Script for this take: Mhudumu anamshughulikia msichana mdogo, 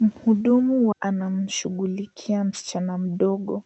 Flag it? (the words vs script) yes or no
no